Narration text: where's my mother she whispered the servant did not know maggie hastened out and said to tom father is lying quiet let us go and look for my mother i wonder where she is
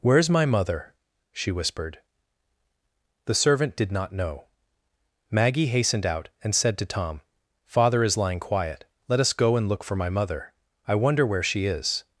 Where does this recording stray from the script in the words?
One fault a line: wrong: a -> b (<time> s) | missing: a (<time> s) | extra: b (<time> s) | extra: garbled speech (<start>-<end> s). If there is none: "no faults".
no faults